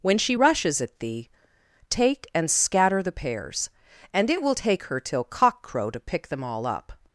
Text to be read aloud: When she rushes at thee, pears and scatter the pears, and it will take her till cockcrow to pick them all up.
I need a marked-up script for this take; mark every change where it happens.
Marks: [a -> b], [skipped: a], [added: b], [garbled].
When she rushes at thee, [pears -> take] and scatter the pears, and it will take her till cockcrow to pick them all up.